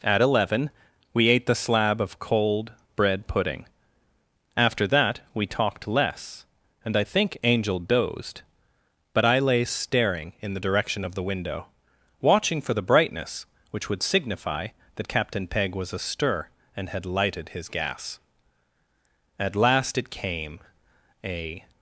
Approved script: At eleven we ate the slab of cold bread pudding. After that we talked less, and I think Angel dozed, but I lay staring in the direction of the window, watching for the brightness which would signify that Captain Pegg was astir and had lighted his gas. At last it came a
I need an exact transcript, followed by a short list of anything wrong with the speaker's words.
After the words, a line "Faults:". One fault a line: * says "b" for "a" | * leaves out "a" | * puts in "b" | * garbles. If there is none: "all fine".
At eleven we ate the slab of cold bread pudding. After that we talked less, and I think Angel dozed, but I lay staring in the direction of the window, watching for the brightness which would signify that Captain Pegg was astir and had lighted his gas. At last it came a
Faults:
all fine